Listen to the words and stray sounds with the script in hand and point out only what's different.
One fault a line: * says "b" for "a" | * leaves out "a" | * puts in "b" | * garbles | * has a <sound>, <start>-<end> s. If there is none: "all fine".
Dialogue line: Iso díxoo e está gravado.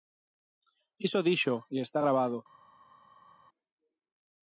all fine